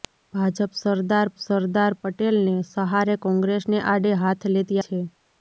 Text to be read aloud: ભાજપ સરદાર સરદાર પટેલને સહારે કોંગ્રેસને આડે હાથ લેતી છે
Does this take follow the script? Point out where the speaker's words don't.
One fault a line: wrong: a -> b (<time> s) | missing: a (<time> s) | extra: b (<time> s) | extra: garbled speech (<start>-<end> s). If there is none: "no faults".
no faults